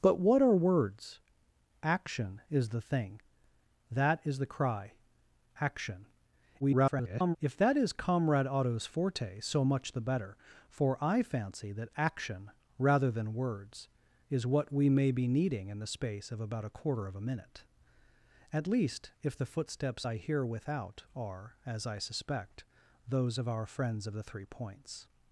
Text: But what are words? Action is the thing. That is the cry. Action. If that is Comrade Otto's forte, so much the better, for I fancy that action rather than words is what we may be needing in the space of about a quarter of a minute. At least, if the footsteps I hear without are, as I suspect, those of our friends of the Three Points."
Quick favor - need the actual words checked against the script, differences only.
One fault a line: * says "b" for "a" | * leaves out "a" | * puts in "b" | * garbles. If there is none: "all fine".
* garbles